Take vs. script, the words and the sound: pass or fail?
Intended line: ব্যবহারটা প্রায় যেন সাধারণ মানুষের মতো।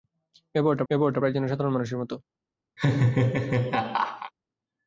fail